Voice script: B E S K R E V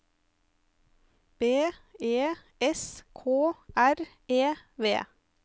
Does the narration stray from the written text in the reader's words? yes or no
no